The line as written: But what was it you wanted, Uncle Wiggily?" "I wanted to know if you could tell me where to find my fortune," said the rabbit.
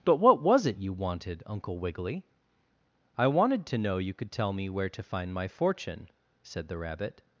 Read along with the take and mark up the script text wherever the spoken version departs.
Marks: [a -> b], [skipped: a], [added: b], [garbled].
But what was it you wanted, Uncle Wiggily?" "I wanted to know [skipped: if] you could tell me where to find my fortune," said the rabbit.